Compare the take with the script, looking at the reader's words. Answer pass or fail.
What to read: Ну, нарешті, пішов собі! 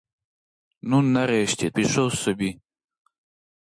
pass